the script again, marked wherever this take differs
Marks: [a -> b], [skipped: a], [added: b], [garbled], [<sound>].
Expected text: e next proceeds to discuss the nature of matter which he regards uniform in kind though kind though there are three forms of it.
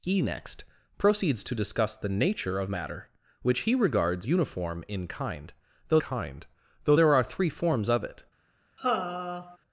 e next proceeds to discuss the nature of matter which he regards uniform in kind though kind though there are three forms of it. [sigh]